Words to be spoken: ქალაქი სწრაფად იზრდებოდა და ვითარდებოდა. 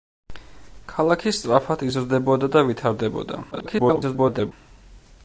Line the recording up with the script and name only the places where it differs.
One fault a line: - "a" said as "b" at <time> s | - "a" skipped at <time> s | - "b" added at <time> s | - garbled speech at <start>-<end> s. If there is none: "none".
- garbled speech at 3.5-4.5 s